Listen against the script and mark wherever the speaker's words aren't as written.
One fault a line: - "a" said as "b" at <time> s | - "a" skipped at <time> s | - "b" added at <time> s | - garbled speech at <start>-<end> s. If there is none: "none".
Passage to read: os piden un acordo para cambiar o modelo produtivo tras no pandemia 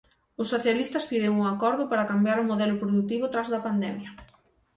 - "socialistas" added at 0.5 s
- "no" said as "da" at 3.5 s